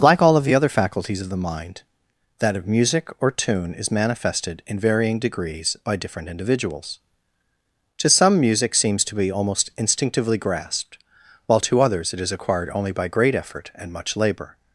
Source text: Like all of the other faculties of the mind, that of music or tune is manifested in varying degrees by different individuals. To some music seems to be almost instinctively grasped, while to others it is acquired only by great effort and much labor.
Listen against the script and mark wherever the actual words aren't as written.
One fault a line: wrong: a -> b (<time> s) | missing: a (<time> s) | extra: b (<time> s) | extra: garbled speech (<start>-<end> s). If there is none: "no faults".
no faults